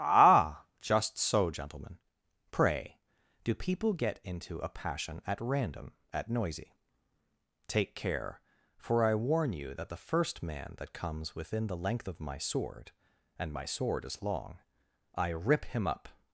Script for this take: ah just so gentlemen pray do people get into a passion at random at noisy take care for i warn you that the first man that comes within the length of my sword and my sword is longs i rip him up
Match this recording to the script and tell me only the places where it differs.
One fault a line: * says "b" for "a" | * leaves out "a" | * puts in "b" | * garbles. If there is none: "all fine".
* says "long" for "longs"